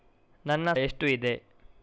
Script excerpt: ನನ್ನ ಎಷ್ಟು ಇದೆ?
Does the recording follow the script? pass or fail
pass